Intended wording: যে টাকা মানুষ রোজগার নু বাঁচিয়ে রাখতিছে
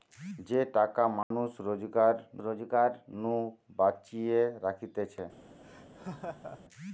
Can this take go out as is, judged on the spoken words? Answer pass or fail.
fail